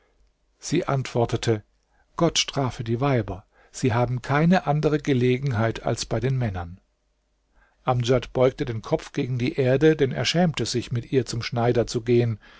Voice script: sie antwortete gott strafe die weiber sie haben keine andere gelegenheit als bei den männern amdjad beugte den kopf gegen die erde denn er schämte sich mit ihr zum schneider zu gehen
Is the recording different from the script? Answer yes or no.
no